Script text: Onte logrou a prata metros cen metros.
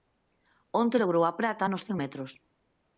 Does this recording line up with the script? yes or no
no